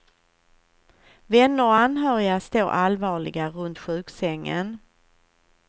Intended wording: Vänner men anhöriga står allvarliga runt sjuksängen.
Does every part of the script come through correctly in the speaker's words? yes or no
no